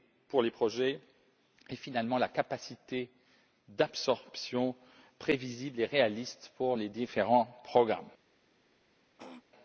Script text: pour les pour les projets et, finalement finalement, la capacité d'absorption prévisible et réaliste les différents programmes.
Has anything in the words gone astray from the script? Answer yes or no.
yes